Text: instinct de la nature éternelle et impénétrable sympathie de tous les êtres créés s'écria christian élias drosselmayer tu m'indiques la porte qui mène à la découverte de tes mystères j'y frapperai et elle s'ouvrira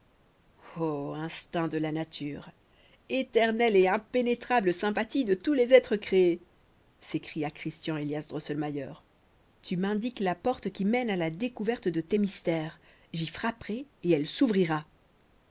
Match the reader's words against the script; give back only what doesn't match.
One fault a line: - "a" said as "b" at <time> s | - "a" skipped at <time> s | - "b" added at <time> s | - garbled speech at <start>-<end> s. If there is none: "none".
none